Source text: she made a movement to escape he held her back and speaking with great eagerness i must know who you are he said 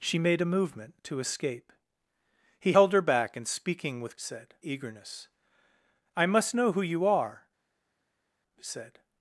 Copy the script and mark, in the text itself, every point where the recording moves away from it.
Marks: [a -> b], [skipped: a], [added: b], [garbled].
she made a movement to escape he held her back and speaking with [great -> said] eagerness i must know who you are he said